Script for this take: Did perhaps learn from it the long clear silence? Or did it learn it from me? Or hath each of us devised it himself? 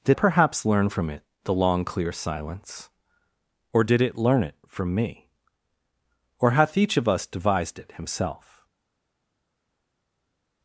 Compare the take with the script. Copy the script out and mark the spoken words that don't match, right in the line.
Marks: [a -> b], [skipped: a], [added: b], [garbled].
Did perhaps learn from it the long clear silence? Or did it learn it from me? Or hath each of us devised it himself?